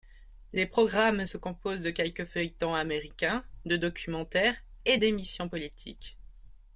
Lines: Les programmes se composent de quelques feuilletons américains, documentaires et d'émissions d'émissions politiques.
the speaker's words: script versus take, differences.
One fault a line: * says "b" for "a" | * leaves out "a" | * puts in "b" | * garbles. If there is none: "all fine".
* puts in "de"
* leaves out "d'émissions"